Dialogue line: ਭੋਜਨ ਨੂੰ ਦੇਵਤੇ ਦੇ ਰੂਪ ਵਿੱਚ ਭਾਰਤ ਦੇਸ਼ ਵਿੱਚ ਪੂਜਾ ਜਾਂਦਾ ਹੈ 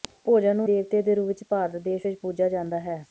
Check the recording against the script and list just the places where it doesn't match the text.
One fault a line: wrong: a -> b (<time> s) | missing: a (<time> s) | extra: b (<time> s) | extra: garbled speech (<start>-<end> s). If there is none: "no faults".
no faults